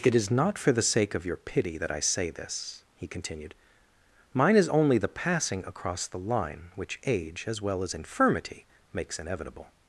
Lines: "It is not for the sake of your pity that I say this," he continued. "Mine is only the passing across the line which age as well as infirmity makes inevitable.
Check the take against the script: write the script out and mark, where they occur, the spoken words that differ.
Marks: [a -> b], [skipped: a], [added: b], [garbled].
"It is not for the sake of your pity that I say this," he continued. "Mine is only the passing across the line which age as well as infirmity makes inevitable.